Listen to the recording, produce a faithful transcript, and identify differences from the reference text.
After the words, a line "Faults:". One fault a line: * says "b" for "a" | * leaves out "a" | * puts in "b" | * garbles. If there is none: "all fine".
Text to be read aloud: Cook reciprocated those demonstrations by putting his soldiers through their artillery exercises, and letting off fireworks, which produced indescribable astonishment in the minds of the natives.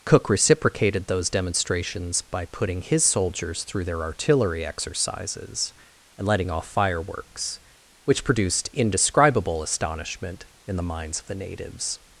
Cook reciprocated those demonstrations by putting his soldiers through their artillery exercises, and letting off fireworks, which produced indescribable astonishment in the minds of the natives.
Faults:
all fine